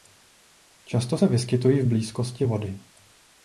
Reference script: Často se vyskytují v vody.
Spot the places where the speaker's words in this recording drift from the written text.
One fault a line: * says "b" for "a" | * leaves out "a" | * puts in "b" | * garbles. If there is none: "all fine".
* puts in "blízkosti"